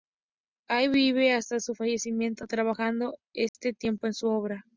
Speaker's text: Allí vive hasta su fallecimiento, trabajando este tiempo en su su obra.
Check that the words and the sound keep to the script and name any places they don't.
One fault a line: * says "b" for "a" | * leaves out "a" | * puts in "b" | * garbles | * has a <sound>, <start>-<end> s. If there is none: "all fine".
* has a dropout, 3.5-3.5 s
* leaves out "su"